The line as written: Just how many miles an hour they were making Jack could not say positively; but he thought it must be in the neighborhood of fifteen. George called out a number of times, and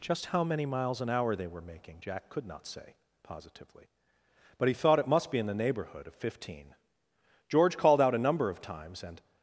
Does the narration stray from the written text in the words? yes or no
no